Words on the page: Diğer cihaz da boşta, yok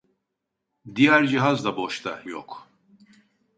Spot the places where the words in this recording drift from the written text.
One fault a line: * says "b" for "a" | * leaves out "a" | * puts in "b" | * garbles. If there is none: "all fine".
all fine